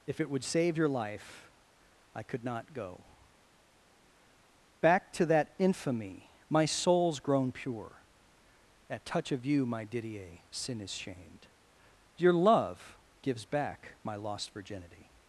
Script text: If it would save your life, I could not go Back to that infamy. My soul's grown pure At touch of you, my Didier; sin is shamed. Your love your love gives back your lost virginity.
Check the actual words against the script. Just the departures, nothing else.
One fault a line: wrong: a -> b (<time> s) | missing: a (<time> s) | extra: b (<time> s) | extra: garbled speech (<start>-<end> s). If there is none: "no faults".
missing: your love (13.0 s)
wrong: your -> my (14.0 s)